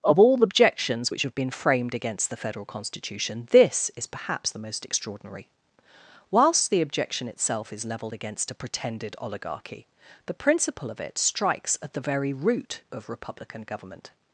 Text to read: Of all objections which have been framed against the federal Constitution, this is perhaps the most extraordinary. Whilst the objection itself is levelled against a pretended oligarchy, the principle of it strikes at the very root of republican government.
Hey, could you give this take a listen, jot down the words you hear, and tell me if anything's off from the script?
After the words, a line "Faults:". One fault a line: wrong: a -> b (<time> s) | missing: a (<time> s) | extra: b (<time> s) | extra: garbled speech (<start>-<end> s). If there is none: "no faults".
Of all objections which have been framed against the federal Constitution, this is perhaps the most extraordinary. Whilst the objection itself is levelled against a pretended oligarchy, the principle of it strikes at the very root of republican government.
Faults:
no faults